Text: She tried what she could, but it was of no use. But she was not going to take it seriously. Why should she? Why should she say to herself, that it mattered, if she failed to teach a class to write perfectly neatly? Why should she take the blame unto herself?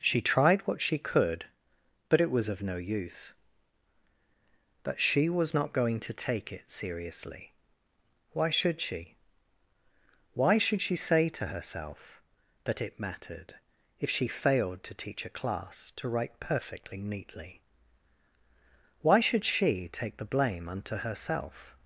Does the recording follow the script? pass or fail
pass